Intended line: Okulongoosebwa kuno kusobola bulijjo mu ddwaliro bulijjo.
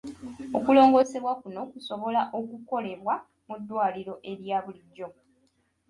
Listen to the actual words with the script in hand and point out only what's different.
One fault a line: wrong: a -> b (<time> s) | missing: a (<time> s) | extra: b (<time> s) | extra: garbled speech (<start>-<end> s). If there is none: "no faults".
wrong: bulijjo -> okukolebwa (2.4 s)
extra: erya (4.3 s)